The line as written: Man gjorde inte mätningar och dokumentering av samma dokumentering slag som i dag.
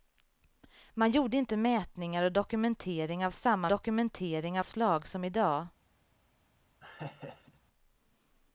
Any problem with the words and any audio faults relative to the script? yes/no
yes